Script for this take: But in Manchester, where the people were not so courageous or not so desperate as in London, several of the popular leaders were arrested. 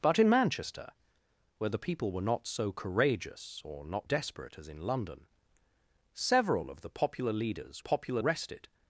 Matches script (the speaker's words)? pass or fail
fail